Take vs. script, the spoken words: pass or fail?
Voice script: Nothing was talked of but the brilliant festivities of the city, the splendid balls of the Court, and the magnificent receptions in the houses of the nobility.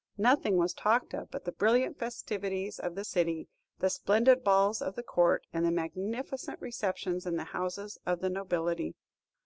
pass